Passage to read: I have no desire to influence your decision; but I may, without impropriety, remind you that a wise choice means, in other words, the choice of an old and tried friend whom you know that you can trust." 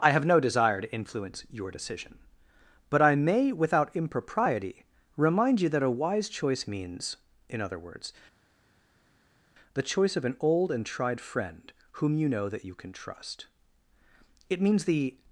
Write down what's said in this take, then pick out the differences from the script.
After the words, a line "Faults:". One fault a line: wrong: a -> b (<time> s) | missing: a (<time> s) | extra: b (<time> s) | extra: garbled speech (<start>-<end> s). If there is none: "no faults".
I have no desire to influence your decision; but I may, without impropriety, remind you that a wise choice means, in other words, the choice of an old and tried friend whom you know that you can trust." "It means the
Faults:
extra: It means the (14.5 s)